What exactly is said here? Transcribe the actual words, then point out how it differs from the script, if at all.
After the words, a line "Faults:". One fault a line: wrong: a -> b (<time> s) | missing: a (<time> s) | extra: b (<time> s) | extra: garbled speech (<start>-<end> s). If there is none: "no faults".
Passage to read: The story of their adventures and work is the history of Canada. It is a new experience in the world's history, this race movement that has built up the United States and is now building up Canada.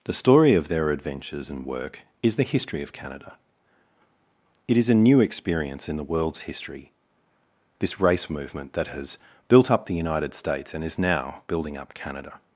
The story of their adventures and work is the history of Canada. It is a new experience in the world's history, this race movement that has built up the United States and is now building up Canada.
Faults:
no faults